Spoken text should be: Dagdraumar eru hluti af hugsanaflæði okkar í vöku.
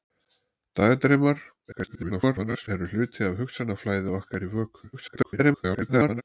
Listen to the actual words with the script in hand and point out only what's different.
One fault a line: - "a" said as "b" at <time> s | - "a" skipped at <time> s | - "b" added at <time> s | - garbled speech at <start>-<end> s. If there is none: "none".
- garbled speech at 1.7-2.7 s
- garbled speech at 4.9-6.2 s